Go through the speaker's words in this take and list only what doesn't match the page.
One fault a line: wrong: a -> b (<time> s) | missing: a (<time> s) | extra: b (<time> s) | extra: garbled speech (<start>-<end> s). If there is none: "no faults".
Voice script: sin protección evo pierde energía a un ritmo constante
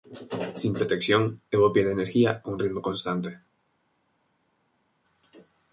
no faults